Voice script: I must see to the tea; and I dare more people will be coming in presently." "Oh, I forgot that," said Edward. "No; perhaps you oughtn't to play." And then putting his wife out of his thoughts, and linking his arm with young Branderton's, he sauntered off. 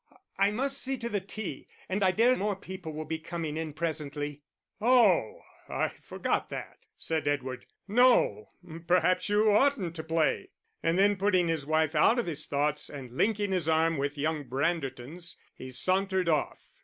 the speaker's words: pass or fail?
pass